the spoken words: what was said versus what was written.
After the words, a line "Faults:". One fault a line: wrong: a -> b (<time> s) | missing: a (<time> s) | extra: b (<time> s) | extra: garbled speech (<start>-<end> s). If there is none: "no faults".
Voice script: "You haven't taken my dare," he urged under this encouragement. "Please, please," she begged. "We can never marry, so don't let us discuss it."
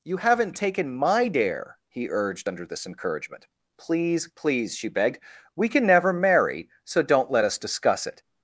"You haven't taken my dare," he urged under this encouragement. "Please, please," she begged. "We can never marry, so don't let us discuss it."
Faults:
no faults